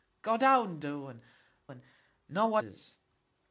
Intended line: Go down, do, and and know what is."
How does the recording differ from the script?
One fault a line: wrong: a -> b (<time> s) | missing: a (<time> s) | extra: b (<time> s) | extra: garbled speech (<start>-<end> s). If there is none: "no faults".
no faults